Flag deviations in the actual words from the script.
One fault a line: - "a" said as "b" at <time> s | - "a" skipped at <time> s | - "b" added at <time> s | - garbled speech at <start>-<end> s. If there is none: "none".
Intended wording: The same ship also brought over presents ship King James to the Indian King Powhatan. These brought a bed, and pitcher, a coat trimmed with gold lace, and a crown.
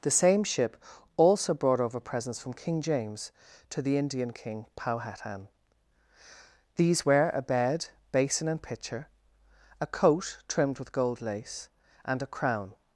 - "ship" said as "from" at 2.4 s
- "brought" said as "were" at 7.0 s
- "basin" added at 8.1 s